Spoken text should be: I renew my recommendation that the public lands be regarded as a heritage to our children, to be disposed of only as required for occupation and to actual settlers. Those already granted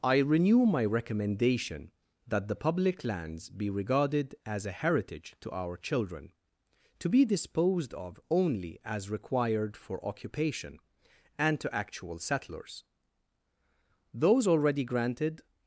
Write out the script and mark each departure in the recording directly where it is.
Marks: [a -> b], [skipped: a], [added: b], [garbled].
I renew my recommendation that the public lands be regarded as a heritage to our children, to be disposed of only as required for occupation and to actual settlers. Those already granted